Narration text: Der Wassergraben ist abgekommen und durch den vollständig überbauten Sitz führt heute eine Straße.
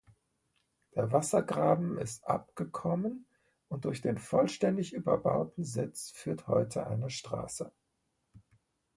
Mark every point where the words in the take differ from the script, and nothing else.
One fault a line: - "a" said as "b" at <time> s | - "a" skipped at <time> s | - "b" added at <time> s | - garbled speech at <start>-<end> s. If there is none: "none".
none